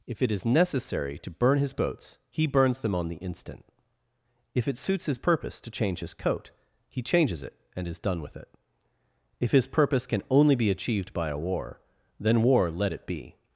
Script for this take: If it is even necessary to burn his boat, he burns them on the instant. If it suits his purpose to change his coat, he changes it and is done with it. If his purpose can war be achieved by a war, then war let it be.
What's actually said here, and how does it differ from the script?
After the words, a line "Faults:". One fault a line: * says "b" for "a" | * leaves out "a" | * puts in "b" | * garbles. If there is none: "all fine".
If it is necessary to burn his boats, he burns them on the instant. If it suits his purpose to change his coat, he changes it and is done with it. If his purpose can only be achieved by a war, then war let it be.
Faults:
* leaves out "even"
* says "boats" for "boat"
* says "only" for "war"